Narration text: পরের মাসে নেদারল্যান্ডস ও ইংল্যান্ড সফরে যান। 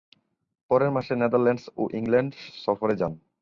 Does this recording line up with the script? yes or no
yes